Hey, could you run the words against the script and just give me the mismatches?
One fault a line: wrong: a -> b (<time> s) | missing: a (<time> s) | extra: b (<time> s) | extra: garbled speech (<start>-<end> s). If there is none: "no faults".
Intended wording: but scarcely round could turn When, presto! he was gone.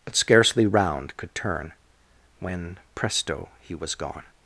no faults